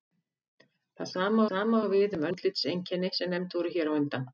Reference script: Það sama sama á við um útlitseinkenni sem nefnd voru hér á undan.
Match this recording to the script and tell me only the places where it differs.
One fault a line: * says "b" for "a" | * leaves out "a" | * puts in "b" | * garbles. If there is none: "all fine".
all fine